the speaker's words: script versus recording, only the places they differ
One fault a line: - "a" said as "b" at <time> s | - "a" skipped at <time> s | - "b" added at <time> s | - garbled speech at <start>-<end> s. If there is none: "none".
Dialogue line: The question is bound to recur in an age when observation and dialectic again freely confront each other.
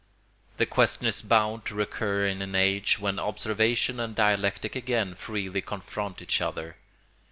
none